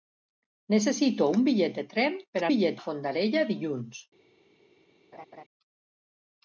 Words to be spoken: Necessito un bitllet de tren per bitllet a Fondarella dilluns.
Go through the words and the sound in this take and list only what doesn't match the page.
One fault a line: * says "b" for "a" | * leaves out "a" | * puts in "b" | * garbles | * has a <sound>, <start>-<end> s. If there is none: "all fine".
* has a laugh, 5.1-5.4 s